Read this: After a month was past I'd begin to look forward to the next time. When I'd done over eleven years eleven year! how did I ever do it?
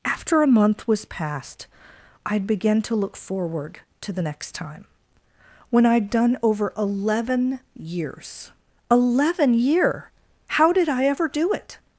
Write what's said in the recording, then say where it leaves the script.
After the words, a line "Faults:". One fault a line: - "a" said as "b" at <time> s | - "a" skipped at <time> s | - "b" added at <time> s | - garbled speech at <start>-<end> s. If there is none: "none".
After a month was past I'd begin to look forward to the next time. When I'd done over eleven years eleven year! how did I ever do it?
Faults:
none